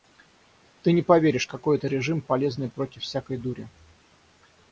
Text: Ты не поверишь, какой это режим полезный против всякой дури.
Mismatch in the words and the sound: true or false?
false